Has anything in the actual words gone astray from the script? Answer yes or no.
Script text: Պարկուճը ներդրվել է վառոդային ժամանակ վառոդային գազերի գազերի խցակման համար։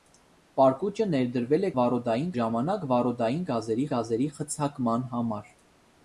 no